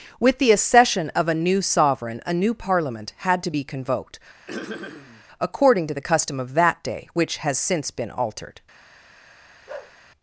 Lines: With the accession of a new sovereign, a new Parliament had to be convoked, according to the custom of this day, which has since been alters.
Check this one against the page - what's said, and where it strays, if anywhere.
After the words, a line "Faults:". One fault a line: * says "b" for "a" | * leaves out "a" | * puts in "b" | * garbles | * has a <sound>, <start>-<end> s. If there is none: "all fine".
With the accession of a new sovereign, a new Parliament had to be convoked, according to the custom of that day, which has since been altered.
Faults:
* has a throat clearing, 4.5-5.2 s
* says "that" for "this"
* says "altered" for "alters"
* has a bark, 9.7-10.0 s